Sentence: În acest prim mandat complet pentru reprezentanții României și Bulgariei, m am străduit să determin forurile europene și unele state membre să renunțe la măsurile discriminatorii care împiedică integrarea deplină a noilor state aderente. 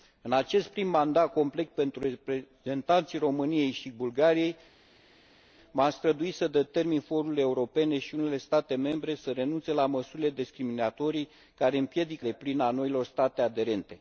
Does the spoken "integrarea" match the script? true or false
false